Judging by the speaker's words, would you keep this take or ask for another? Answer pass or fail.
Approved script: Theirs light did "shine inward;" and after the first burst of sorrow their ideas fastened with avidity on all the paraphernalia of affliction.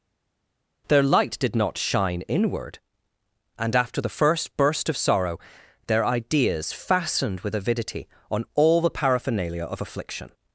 fail